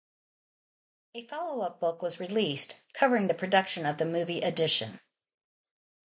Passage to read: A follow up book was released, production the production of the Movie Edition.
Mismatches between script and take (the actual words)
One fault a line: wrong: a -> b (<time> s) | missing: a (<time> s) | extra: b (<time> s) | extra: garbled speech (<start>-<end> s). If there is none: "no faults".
wrong: production -> covering (2.9 s)